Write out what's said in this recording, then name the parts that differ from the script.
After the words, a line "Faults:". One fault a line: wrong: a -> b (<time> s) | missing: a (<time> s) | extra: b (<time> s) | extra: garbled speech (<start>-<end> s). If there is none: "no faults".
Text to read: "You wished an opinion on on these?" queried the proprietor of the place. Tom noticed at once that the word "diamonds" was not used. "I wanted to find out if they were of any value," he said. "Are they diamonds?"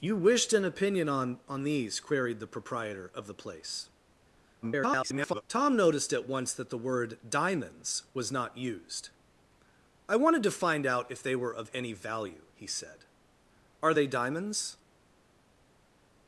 "You wished an opinion on on these?" queried the proprietor of the place. [garbled] Tom noticed at once that the word "diamonds" was not used. "I wanted to find out if they were of any value," he said. "Are they diamonds?"
Faults:
extra: garbled speech (4.6-5.4 s)